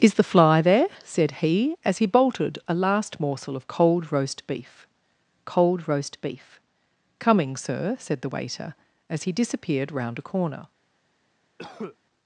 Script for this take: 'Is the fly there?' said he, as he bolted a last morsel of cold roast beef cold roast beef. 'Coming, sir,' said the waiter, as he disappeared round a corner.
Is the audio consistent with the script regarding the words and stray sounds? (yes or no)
no